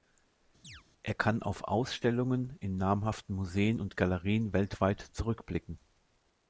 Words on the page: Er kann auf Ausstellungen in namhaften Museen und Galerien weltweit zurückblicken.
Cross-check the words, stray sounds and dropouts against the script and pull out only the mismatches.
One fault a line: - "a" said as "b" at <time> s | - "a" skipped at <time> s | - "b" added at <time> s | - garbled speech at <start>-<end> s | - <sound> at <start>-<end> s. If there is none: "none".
- chirp at 0.6-0.8 s